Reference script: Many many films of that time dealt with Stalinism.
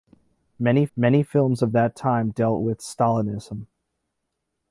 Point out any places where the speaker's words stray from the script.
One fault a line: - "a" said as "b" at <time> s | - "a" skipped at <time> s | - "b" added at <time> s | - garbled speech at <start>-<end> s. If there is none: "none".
none